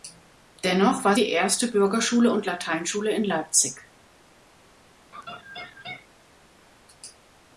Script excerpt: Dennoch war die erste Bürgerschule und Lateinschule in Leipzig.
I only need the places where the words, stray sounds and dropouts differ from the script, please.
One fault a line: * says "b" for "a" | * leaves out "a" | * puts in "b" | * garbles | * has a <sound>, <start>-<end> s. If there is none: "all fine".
* has a laugh, 5.1-6.1 s